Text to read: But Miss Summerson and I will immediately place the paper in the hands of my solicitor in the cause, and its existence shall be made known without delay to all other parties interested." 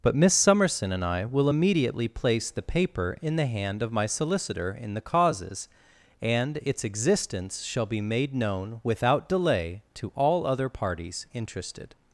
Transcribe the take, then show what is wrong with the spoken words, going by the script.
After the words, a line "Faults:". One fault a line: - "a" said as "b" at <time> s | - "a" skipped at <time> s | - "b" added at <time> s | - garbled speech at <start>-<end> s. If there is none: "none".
But Miss Summerson and I will immediately place the paper in the hand of my solicitor in the causes, and its existence shall be made known without delay to all other parties interested."
Faults:
- "hands" said as "hand" at 3.5 s
- "cause" said as "causes" at 5.0 s